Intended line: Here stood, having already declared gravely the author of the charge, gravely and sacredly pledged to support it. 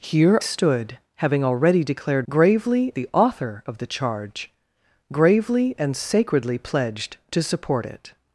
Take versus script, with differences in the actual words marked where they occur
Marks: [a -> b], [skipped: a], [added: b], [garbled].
Here stood, having already declared gravely the author of the charge, gravely and sacredly pledged to support it.